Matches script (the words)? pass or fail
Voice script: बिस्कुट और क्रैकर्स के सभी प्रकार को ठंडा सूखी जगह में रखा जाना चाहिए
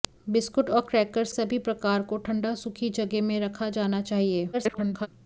fail